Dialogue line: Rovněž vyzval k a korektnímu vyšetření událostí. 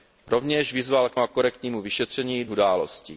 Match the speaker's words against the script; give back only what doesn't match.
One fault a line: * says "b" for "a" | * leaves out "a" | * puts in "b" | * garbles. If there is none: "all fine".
all fine